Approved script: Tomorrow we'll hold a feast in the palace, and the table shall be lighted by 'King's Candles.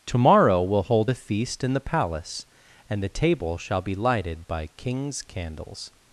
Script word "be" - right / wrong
right